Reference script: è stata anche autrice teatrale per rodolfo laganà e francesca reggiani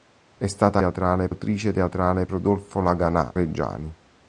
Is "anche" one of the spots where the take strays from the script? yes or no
yes